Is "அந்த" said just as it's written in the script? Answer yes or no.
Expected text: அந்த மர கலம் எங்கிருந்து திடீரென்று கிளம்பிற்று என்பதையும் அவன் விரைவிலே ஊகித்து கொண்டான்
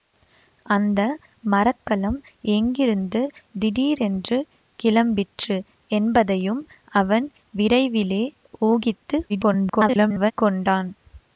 yes